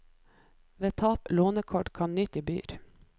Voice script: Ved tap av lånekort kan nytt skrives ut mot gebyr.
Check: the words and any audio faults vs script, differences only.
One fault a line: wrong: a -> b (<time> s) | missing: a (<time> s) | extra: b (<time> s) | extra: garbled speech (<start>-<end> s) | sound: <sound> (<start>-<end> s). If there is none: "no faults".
missing: av (1.3 s)
missing: skrives ut mot (2.4 s)